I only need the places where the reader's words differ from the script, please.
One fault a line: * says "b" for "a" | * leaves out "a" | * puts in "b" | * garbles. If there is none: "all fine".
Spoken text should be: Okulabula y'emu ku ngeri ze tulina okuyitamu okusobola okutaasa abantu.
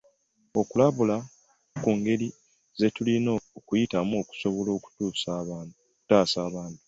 * leaves out "y'emu"